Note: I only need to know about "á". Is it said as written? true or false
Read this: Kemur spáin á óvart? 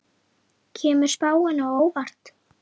true